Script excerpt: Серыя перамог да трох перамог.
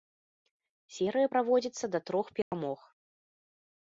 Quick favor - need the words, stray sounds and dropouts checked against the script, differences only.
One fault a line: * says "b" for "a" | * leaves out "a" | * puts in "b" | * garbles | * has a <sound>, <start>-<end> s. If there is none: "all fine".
* says "праводзіцца" for "перамог"
* has a dropout, 2.4-2.5 s